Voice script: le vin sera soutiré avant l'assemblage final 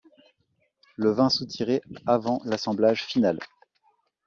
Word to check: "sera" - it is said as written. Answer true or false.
false